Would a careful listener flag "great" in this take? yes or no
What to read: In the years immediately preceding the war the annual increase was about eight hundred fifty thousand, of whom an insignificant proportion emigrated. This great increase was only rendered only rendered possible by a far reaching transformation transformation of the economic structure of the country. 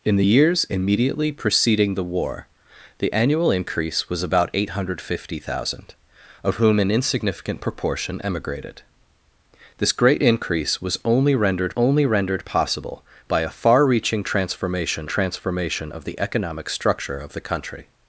no